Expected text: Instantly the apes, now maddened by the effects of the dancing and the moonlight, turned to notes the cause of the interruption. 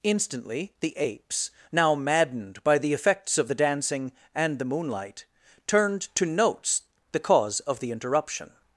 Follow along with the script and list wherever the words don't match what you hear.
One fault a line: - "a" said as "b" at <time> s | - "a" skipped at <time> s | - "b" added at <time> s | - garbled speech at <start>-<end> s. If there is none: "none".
none